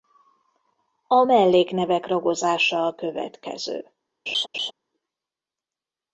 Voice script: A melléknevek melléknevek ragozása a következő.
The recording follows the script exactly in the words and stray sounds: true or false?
false